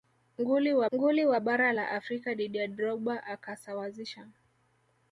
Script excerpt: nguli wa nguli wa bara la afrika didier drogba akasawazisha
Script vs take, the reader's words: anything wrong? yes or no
no